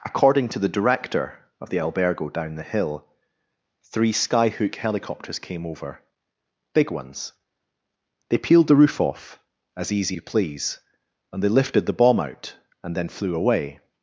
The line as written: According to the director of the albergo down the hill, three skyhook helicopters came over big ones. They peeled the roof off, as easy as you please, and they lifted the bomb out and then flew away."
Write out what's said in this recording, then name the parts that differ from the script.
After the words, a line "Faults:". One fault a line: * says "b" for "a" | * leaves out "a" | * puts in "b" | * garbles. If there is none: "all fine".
According to the director of the albergo down the hill, three skyhook helicopters came over big ones. They peeled the roof off, as easy you please, and they lifted the bomb out and then flew away."
Faults:
* leaves out "as"